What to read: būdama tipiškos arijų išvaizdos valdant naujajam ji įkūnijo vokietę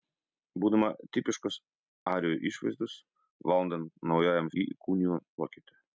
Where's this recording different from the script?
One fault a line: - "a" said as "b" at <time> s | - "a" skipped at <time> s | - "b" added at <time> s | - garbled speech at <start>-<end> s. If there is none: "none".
none